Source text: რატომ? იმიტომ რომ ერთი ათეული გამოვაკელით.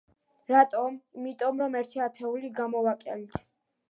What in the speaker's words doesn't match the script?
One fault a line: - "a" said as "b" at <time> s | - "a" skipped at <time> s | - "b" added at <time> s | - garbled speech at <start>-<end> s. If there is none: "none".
none